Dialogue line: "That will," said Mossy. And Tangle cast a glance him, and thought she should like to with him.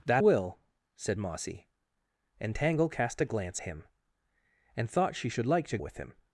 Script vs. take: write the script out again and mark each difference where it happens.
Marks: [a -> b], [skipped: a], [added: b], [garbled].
"That will," said Mossy. And Tangle cast a glance him, and thought she should like to with him.